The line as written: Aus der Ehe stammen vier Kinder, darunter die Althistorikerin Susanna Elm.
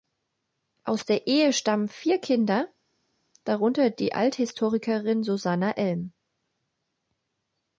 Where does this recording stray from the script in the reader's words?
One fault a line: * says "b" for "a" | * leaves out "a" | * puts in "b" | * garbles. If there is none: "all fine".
all fine